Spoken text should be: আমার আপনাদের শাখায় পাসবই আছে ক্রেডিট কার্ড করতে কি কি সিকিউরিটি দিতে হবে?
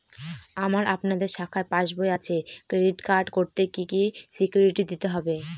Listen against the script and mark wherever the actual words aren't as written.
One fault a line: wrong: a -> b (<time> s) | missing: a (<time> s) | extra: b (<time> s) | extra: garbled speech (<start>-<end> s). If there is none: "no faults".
no faults